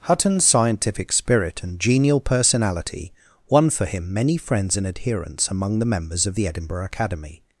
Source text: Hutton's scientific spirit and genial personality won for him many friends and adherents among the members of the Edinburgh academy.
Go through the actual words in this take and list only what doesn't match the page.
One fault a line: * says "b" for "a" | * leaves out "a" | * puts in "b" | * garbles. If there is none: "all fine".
all fine